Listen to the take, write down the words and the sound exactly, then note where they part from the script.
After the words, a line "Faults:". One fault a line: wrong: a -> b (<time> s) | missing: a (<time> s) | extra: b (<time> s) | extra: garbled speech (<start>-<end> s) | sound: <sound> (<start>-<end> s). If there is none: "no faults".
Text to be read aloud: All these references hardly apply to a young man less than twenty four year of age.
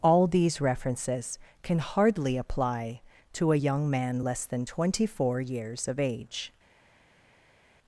All these references can hardly apply to a young man less than twenty four years of age.
Faults:
extra: can (1.6 s)
wrong: year -> years (5.4 s)